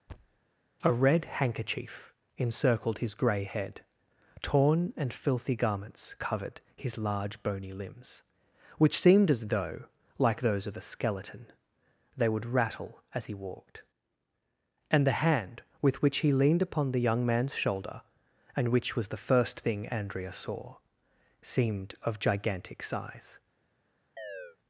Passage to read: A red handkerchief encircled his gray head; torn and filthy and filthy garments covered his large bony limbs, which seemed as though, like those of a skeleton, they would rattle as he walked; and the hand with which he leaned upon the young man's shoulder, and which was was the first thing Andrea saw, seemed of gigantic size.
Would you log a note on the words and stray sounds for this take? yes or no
yes